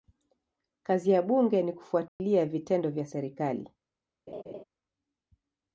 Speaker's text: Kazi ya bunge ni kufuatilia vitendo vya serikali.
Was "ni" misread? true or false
false